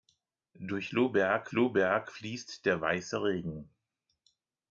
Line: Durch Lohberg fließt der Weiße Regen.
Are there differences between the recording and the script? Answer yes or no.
yes